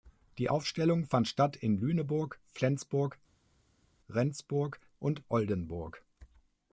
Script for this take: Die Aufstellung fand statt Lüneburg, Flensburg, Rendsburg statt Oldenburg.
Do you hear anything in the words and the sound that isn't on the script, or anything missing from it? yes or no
yes